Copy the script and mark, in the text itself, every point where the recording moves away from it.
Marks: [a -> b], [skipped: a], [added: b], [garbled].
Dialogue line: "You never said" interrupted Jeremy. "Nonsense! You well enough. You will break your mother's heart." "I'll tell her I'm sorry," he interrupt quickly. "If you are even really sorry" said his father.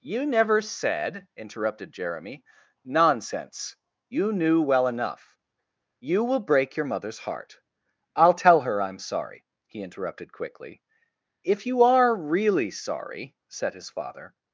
"You never said" interrupted Jeremy. "Nonsense! You [added: knew] well enough. You will break your mother's heart." "I'll tell her I'm sorry," he [interrupt -> interrupted] quickly. "If you are [skipped: even] really sorry" said his father.